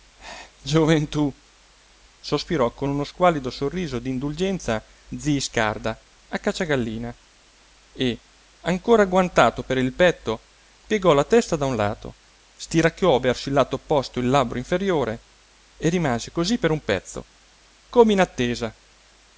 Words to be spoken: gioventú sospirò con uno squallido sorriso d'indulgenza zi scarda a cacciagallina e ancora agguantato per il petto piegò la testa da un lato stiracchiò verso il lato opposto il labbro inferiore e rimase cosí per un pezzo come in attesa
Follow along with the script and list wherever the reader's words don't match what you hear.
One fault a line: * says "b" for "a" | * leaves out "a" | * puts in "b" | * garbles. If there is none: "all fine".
all fine